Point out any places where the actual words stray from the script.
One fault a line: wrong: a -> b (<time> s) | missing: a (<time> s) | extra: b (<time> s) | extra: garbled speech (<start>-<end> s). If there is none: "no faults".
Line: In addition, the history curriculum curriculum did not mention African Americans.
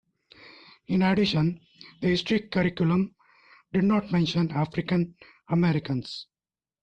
missing: curriculum (3.1 s)